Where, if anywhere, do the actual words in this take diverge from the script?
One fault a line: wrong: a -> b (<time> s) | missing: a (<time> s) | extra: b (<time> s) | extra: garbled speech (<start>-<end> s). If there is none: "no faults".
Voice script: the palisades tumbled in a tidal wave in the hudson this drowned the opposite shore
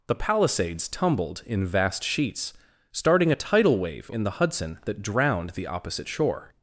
extra: vast sheets starting (1.6 s)
wrong: this -> that (4.8 s)